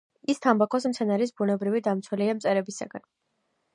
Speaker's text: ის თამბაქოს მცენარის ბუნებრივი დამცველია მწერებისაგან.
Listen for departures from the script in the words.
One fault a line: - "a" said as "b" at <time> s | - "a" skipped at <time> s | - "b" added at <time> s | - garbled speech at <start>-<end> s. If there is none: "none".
none